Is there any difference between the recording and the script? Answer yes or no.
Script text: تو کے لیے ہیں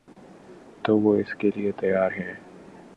yes